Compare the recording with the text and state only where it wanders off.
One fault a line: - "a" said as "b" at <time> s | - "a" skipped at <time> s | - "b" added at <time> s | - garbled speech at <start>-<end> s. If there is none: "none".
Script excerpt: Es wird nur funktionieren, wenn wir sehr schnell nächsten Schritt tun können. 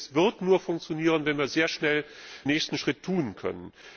none